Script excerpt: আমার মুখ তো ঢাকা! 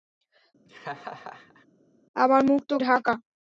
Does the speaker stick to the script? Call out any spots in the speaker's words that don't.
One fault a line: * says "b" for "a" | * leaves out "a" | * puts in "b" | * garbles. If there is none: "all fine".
all fine